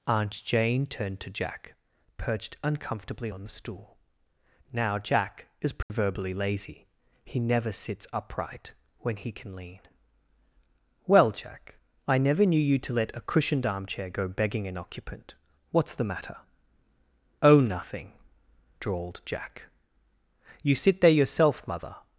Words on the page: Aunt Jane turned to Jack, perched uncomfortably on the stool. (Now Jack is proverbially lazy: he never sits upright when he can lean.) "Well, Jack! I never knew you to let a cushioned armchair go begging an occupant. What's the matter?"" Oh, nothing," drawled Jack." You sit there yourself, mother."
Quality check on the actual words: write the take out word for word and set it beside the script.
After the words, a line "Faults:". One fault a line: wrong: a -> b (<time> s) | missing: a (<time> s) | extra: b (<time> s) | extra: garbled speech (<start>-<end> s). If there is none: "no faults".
Aunt Jane turned to Jack, perched uncomfortably on the stool. (Now Jack is proverbially lazy: he never sits upright when he can lean.) "Well, Jack! I never knew you to let a cushioned armchair go begging an occupant. What's the matter?"" Oh, nothing," drawled Jack." You sit there yourself, mother."
Faults:
no faults